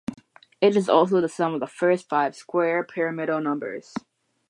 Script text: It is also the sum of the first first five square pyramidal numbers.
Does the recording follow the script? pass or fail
fail